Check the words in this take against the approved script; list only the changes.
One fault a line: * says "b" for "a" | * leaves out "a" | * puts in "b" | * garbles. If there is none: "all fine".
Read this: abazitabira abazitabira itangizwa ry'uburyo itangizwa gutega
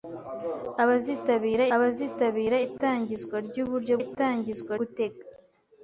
all fine